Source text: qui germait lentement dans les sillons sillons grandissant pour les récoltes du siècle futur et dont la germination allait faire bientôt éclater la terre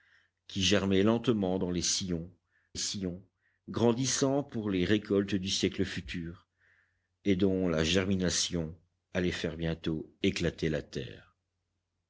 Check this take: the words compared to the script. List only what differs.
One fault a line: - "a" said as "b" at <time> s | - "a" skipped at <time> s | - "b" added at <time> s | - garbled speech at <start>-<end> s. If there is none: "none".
none